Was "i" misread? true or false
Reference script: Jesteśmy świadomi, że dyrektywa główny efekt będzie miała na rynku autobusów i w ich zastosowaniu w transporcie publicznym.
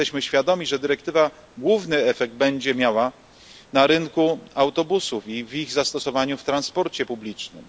false